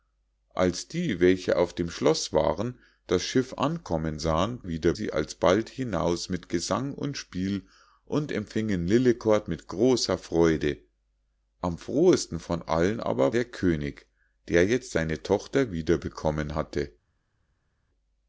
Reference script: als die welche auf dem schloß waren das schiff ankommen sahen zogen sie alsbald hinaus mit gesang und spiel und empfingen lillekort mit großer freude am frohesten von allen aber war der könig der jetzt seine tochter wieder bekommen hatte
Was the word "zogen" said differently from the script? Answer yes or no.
yes